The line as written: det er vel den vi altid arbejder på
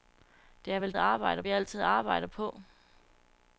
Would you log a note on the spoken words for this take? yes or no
yes